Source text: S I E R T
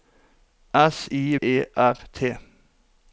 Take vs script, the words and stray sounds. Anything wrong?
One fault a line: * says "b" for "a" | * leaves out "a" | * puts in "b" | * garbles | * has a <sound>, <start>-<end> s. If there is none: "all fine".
all fine